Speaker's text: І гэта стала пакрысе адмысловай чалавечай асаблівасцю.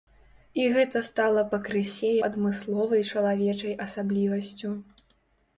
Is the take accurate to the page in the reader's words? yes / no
yes